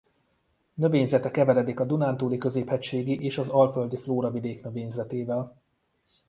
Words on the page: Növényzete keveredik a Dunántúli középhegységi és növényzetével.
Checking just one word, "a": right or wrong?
right